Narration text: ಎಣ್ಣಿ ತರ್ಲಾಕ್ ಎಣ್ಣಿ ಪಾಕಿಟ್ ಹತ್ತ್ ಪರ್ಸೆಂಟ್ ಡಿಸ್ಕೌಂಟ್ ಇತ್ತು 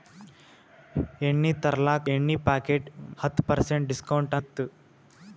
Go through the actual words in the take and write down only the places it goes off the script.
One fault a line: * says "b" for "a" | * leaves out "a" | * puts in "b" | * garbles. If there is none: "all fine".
all fine